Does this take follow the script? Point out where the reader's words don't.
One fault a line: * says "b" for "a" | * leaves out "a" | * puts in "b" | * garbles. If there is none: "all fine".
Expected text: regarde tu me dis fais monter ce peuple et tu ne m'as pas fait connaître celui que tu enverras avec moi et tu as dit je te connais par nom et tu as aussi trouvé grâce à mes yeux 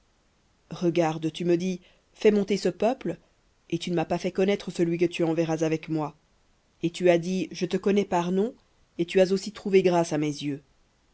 all fine